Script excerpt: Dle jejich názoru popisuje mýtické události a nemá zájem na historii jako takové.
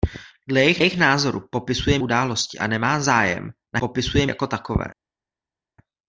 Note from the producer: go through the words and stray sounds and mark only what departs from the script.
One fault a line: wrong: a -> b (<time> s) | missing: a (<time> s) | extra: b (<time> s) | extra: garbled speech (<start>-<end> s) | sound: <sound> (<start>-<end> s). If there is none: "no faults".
extra: jejich (0.8 s)
missing: mýtické (2.0 s)
wrong: historii -> popisuje (3.8 s)